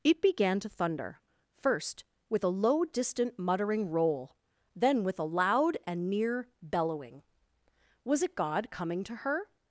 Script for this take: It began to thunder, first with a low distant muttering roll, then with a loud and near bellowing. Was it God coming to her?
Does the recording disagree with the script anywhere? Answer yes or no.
no